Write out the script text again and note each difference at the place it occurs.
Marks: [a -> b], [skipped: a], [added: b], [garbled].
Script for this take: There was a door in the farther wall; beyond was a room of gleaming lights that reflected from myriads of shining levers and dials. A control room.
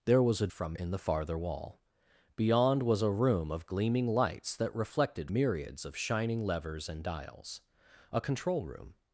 There was a [door -> from] in the farther wall; beyond was a room of gleaming lights that reflected [skipped: from] myriads of shining levers and dials. A control room.